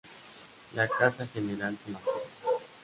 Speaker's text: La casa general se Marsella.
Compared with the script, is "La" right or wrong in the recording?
right